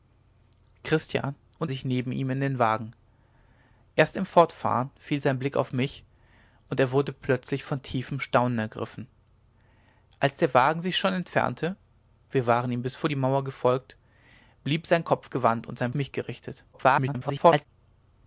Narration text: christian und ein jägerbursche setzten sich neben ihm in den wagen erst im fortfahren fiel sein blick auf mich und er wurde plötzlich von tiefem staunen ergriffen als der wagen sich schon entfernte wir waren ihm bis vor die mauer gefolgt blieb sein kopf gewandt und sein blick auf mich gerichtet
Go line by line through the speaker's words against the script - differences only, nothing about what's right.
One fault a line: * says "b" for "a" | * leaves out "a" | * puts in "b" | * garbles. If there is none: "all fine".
* leaves out "ein jägerbursche setzten"
* leaves out "blick auf"
* garbles